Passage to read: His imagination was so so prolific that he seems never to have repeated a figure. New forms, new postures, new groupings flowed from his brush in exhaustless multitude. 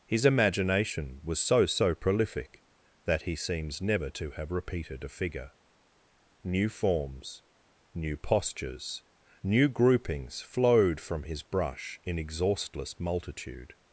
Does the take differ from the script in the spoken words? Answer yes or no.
no